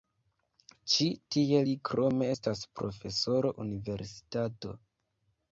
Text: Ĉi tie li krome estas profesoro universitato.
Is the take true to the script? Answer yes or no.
yes